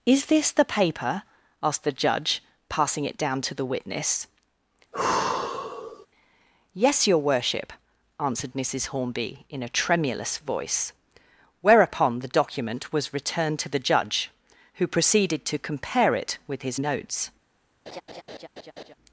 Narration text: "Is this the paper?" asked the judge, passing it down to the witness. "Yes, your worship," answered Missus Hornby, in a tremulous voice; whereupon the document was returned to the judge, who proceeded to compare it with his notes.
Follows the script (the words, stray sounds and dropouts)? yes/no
no